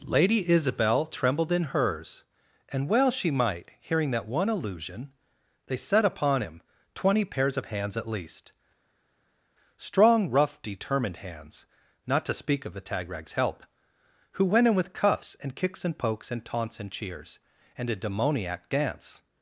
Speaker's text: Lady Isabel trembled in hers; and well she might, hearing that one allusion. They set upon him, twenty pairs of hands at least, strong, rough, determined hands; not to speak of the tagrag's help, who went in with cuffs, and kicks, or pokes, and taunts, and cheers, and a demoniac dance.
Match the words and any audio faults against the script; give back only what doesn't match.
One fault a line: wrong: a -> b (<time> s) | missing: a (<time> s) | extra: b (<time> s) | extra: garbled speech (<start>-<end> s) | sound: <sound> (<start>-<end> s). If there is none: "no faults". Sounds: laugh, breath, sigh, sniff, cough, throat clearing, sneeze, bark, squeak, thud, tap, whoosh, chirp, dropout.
wrong: or -> and (15.8 s)